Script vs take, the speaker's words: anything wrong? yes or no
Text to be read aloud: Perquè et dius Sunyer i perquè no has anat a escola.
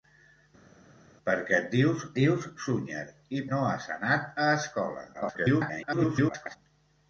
yes